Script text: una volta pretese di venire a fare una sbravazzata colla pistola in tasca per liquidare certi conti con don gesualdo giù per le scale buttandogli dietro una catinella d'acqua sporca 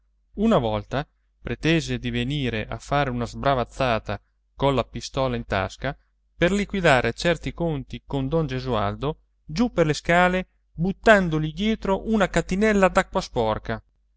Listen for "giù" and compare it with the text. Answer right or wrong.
right